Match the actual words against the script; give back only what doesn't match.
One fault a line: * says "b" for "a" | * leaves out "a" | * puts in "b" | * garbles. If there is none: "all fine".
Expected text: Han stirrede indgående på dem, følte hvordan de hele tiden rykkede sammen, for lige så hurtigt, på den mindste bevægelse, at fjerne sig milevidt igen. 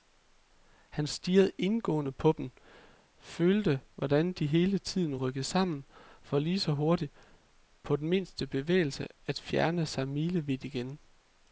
all fine